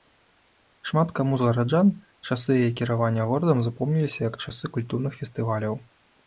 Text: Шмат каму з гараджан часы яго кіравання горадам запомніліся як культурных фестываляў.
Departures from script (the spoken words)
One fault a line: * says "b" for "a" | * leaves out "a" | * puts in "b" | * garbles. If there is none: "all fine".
* says "яе" for "яго"
* puts in "часы"